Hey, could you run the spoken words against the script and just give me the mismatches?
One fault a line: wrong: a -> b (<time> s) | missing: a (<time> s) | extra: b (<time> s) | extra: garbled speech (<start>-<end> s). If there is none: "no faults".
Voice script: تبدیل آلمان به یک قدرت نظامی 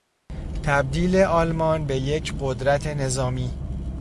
no faults